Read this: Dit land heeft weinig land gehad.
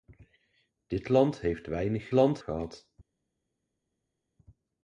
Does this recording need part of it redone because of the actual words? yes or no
no